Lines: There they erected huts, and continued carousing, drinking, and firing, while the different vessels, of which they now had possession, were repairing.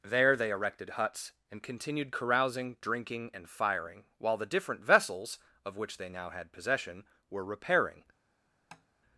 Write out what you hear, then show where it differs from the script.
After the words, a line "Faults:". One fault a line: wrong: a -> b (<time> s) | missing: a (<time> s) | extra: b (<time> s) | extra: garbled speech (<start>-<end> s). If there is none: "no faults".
There they erected huts, and continued carousing, drinking, and firing, while the different vessels, of which they now had possession, were repairing.
Faults:
no faults